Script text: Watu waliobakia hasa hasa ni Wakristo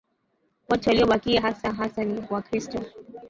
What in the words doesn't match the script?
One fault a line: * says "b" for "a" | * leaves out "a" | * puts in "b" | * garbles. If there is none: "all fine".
all fine